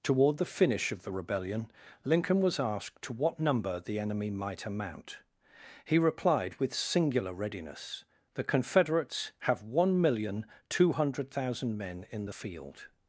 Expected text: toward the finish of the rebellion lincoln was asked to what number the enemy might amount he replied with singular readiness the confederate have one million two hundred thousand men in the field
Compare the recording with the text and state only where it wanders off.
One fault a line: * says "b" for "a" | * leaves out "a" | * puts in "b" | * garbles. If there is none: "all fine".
* says "confederates" for "confederate"